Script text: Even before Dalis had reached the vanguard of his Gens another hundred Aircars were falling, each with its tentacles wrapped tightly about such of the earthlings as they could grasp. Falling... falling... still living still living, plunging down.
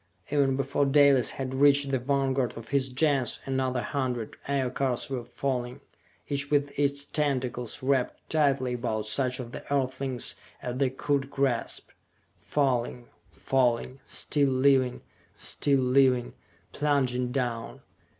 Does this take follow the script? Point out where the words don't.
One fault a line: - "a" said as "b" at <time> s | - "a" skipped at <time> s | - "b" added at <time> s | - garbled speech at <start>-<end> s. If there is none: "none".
none